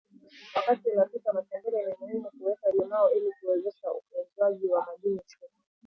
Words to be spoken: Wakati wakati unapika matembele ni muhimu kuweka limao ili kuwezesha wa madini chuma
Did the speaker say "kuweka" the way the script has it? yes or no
yes